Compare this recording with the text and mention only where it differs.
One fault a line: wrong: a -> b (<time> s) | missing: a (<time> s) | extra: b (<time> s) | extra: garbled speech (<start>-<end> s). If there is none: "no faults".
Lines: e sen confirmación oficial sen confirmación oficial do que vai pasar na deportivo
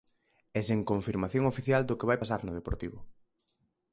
missing: sen confirmación oficial (1.8 s)
wrong: na -> no (2.4 s)